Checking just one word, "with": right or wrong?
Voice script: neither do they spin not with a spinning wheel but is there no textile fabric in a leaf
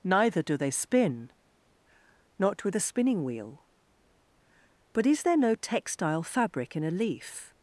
right